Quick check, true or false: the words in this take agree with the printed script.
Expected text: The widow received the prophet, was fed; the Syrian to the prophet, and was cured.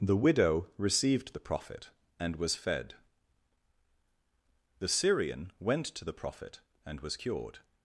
false